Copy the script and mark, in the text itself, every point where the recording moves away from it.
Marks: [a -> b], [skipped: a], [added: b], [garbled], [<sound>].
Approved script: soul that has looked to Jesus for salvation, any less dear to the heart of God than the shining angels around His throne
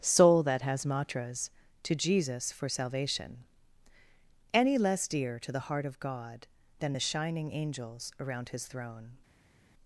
soul that has [looked -> matras] to Jesus for salvation, any less dear to the heart of God than the shining angels around His throne